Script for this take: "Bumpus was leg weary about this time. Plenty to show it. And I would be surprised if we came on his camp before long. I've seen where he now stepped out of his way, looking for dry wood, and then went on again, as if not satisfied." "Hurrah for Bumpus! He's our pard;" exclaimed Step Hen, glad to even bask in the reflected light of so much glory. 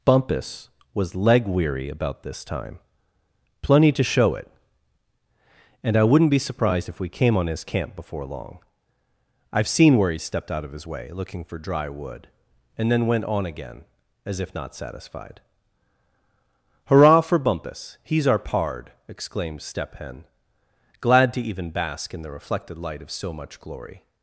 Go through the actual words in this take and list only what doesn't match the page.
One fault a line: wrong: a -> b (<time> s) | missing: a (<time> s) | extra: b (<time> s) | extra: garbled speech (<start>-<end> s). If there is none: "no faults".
wrong: would -> wouldn't (6.0 s)
missing: now (10.2 s)